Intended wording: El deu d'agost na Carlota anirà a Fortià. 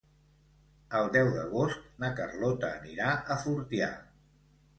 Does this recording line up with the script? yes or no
yes